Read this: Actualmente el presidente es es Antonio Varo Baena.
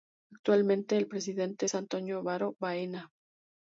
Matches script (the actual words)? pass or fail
fail